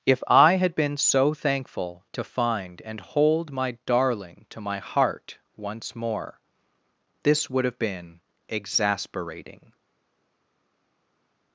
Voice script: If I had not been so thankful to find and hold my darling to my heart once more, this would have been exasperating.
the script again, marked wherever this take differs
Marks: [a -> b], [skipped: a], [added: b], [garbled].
If I had [skipped: not] been so thankful to find and hold my darling to my heart once more, this would have been exasperating.